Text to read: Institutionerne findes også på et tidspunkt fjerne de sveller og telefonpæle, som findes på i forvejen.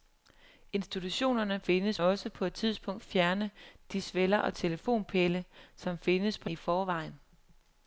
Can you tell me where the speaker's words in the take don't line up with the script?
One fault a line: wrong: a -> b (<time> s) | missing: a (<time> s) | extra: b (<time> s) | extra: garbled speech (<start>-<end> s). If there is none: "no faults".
no faults